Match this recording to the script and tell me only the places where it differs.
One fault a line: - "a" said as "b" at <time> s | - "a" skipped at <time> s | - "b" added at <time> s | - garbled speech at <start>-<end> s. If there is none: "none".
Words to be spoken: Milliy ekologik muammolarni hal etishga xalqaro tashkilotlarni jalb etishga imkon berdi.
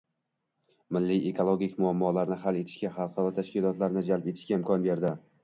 none